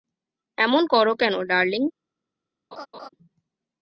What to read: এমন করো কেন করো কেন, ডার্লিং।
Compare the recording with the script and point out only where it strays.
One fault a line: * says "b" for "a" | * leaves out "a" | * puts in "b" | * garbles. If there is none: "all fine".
* leaves out "করো কেন"